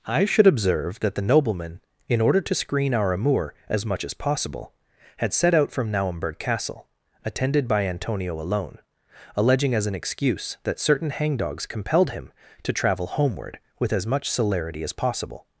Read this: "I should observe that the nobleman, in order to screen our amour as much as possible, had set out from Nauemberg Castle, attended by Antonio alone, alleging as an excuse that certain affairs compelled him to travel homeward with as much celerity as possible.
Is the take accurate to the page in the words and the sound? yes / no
no